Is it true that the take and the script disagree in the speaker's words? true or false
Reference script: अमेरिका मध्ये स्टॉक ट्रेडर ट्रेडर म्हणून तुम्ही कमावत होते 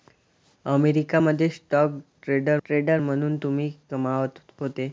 false